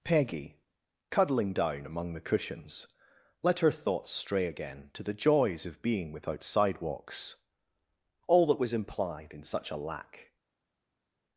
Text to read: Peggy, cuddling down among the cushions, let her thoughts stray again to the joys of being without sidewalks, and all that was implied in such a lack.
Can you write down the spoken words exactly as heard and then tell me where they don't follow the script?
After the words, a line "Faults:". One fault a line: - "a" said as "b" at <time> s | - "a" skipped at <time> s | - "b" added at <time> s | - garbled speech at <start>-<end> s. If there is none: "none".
Peggy, cuddling down among the cushions, let her thoughts stray again to the joys of being without sidewalks, all that was implied in such a lack.
Faults:
- "and" skipped at 7.3 s